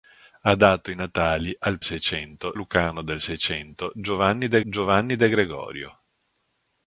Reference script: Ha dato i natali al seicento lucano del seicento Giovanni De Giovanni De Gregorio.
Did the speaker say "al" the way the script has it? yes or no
yes